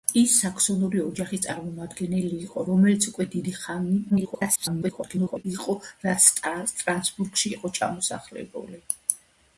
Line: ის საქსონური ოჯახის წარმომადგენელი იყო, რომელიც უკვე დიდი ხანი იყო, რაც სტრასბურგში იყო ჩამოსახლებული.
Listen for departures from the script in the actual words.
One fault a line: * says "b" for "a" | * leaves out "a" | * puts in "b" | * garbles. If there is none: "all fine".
* garbles